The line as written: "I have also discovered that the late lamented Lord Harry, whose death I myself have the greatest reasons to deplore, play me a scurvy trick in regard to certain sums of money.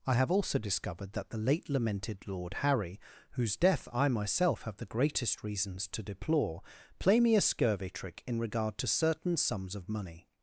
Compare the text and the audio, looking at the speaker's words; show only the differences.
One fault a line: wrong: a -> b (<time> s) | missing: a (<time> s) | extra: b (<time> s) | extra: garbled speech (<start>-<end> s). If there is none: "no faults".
no faults